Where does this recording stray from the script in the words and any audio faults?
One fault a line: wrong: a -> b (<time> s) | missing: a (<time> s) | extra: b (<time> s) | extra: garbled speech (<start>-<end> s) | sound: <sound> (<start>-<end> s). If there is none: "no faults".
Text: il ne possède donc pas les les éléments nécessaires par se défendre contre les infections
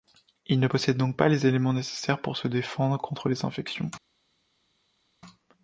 missing: les (1.5 s)
wrong: par -> pour (2.2 s)